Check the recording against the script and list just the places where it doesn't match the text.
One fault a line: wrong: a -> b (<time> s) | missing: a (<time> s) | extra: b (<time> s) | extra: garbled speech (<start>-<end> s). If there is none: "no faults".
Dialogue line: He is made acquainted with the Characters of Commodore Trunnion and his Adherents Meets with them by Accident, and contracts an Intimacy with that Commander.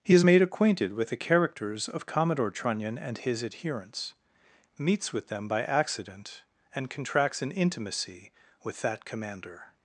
no faults